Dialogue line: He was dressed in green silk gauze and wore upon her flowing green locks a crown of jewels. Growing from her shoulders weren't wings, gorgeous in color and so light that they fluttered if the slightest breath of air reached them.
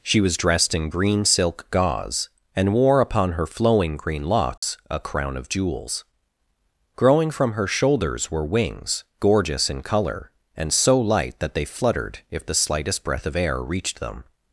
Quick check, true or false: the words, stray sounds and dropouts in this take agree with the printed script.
false